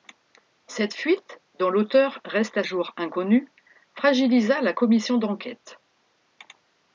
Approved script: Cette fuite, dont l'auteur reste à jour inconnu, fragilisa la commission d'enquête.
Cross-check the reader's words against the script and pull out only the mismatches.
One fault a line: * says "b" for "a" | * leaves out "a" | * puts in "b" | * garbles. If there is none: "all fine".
all fine